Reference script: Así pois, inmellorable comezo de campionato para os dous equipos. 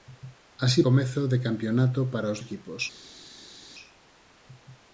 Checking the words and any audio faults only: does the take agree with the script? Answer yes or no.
no